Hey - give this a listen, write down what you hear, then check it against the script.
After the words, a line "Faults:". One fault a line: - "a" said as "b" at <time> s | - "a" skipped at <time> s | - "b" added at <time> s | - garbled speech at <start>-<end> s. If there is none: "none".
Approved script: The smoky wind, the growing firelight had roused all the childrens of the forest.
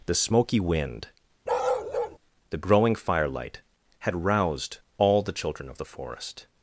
The smoky wind, the growing firelight had roused all the children of the forest.
Faults:
- "childrens" said as "children" at 5.3 s